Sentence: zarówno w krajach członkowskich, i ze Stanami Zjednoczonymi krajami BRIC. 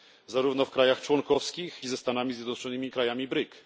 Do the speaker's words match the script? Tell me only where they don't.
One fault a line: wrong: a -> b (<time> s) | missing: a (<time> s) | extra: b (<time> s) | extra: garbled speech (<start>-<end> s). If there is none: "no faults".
no faults